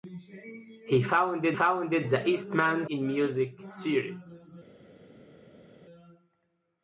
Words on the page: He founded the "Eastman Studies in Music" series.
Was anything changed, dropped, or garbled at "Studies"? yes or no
yes